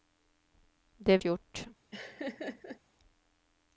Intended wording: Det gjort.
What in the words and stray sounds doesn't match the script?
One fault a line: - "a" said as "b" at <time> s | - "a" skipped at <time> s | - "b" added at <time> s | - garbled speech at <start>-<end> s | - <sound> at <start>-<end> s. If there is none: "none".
- laugh at 1.9-2.8 s